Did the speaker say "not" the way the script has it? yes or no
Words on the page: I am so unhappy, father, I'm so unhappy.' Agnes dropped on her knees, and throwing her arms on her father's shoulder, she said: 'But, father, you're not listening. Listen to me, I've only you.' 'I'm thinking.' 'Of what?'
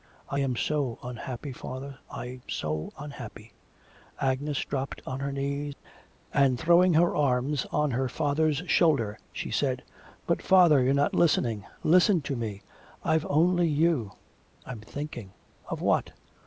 yes